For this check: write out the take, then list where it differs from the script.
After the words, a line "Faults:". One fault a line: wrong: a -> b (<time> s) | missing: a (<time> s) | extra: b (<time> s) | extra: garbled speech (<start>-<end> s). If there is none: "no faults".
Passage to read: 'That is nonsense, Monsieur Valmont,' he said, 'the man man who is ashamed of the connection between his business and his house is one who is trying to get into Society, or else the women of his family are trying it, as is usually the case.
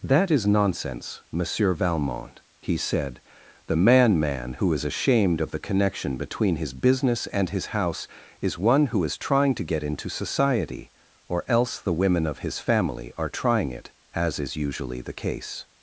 'That is nonsense, Monsieur Valmont,' he said, 'the man man who is ashamed of the connection between his business and his house is one who is trying to get into Society, or else the women of his family are trying it, as is usually the case.
Faults:
no faults